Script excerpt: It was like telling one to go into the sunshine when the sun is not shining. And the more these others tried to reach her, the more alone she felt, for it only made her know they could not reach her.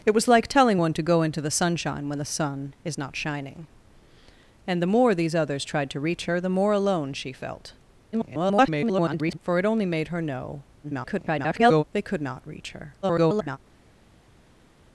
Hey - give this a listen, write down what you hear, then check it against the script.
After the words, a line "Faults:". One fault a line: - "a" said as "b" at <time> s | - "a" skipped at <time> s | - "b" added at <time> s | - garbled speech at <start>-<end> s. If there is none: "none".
It was like telling one to go into the sunshine when the sun is not shining. And the more these others tried to reach her, the more alone she felt, [garbled] for it only made her know [garbled] they could not reach her. [garbled]
Faults:
- garbled speech at 8.1-9.4 s
- garbled speech at 10.8-11.8 s
- garbled speech at 13.0-13.6 s